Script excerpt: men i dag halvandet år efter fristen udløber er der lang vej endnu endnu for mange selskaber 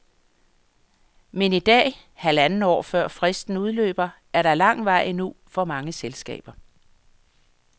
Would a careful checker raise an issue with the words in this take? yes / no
yes